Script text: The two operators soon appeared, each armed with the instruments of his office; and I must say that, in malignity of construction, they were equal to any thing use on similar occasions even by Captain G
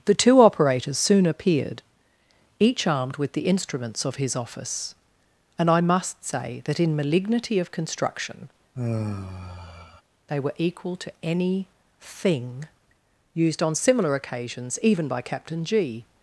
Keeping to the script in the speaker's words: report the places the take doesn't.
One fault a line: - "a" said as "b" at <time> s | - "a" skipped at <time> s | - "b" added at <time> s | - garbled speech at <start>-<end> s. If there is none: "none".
- "use" said as "used" at 13.3 s